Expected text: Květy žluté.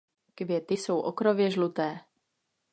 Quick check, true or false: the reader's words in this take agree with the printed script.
false